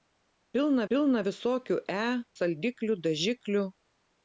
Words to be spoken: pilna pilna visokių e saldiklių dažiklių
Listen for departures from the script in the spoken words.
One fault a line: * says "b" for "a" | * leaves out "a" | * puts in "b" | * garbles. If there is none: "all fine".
all fine